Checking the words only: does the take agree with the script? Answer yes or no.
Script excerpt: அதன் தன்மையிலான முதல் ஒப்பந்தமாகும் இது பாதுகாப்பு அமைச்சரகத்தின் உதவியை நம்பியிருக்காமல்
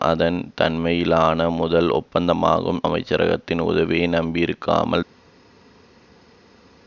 no